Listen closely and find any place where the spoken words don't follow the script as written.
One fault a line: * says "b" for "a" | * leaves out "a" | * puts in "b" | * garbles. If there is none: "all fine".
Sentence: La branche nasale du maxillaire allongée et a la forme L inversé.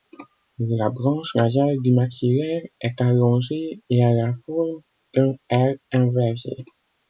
* puts in "est"
* puts in "d'un"